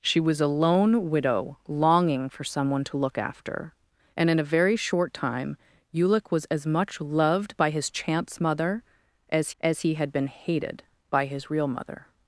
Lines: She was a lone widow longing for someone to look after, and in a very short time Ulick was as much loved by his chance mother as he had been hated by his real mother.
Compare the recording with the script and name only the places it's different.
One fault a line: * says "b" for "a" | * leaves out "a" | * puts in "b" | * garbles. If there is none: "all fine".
* puts in "as"